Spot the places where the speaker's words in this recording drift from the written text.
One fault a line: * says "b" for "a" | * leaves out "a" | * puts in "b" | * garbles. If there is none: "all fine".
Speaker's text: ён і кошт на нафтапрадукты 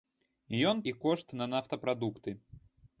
all fine